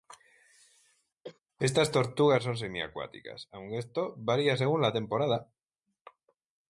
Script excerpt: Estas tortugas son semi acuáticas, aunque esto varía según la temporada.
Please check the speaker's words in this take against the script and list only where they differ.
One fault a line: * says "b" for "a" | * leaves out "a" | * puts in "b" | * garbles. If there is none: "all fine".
all fine